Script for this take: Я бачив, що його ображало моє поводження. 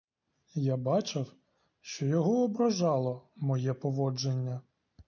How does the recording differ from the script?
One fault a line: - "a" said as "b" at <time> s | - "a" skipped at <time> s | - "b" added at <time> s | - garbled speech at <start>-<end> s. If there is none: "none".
none